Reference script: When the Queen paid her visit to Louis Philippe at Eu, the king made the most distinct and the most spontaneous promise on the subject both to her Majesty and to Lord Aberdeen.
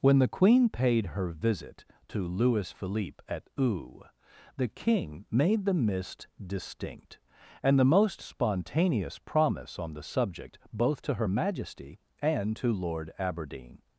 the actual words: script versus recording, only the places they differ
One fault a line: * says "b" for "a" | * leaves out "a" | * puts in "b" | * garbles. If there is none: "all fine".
* says "mist" for "most"